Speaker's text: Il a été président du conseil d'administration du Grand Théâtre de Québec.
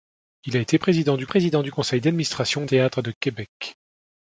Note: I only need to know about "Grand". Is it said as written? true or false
false